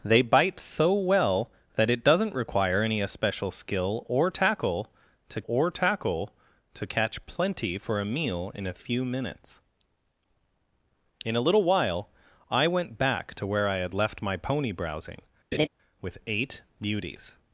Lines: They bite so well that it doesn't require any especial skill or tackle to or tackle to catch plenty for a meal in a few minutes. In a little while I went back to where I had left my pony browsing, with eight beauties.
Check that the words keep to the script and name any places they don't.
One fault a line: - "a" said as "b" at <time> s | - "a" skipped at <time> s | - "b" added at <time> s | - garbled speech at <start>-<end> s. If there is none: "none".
none